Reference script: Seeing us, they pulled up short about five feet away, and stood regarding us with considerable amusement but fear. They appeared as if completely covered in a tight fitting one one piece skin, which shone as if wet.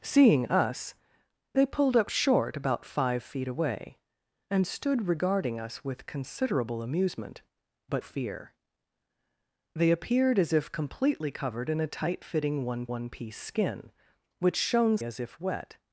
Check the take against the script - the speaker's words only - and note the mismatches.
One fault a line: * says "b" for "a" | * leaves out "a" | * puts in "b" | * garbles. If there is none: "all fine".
all fine